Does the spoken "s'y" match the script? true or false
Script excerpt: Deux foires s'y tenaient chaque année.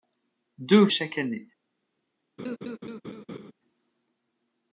false